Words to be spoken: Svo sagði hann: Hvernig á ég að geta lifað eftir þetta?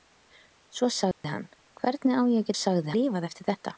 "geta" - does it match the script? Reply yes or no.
no